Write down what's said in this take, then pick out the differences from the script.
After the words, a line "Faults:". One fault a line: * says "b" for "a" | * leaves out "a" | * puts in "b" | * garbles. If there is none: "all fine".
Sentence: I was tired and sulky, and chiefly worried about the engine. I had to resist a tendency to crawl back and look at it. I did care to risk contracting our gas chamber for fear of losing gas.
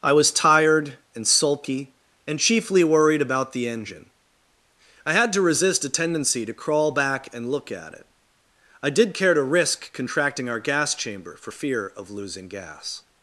I was tired and sulky, and chiefly worried about the engine. I had to resist a tendency to crawl back and look at it. I did care to risk contracting our gas chamber for fear of losing gas.
Faults:
all fine